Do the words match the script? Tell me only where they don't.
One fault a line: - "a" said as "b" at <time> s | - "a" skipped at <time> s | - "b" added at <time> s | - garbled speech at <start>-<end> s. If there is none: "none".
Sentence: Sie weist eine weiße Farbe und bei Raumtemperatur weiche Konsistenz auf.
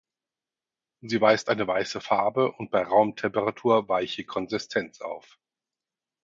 none